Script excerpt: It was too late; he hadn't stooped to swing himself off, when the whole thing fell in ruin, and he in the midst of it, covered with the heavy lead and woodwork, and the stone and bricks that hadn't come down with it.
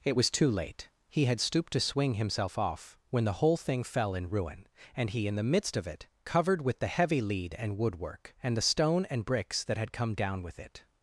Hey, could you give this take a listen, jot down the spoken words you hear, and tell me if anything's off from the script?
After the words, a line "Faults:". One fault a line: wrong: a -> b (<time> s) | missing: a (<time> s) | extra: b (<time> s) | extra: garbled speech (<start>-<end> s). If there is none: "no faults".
It was too late; he had stooped to swing himself off, when the whole thing fell in ruin, and he in the midst of it, covered with the heavy lead and woodwork, and the stone and bricks that had come down with it.
Faults:
wrong: hadn't -> had (1.2 s)
wrong: hadn't -> had (9.8 s)